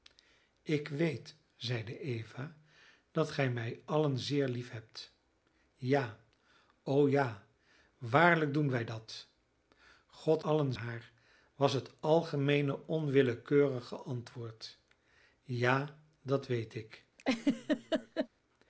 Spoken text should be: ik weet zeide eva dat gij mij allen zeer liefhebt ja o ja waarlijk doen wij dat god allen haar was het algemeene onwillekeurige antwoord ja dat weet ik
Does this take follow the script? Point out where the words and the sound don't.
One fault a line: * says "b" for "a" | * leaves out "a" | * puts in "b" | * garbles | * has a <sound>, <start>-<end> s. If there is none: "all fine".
* has a laugh, 17.2-18.3 s